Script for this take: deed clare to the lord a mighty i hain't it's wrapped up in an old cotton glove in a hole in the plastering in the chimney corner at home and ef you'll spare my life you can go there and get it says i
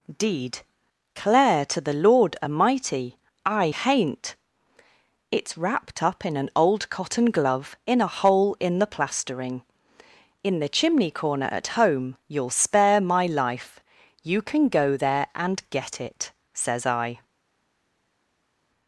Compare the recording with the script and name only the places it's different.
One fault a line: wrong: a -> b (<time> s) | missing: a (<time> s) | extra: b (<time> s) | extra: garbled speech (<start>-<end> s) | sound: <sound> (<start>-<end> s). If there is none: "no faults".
missing: and ef (12.2 s)